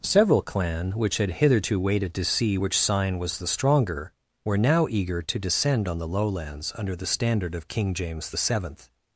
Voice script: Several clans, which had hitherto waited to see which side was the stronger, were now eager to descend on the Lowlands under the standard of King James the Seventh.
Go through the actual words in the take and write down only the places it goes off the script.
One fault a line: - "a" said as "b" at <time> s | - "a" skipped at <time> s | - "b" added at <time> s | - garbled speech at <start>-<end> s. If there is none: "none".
- "clans" said as "clan" at 0.4 s
- "side" said as "sign" at 2.8 s